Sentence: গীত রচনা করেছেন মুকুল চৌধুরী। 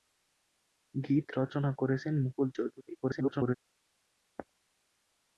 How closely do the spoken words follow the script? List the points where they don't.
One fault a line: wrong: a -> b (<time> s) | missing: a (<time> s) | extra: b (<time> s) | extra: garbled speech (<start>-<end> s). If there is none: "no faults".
extra: garbled speech (3.0-3.6 s)